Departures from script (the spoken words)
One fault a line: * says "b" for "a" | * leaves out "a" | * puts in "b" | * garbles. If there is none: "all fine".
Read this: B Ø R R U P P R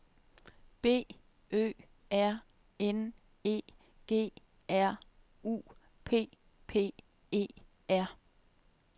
* puts in "N E G"
* puts in "E"